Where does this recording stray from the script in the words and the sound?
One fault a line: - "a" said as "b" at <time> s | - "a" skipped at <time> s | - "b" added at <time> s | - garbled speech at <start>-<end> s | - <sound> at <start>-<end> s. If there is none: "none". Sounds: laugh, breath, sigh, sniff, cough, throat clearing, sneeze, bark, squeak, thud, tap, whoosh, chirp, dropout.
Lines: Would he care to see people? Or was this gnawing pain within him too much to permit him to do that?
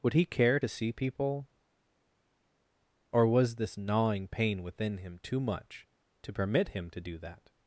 none